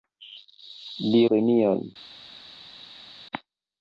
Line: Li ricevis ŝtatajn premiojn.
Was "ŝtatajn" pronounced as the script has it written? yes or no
no